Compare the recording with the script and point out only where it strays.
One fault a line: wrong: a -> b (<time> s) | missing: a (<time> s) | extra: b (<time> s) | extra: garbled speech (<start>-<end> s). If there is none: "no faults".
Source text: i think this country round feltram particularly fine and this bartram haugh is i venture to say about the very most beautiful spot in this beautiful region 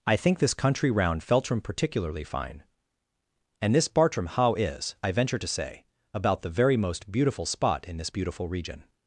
no faults